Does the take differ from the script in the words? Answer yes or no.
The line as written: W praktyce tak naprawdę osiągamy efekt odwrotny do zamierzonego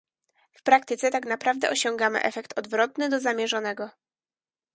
no